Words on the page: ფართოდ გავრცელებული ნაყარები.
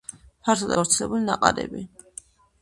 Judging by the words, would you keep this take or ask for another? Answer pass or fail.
pass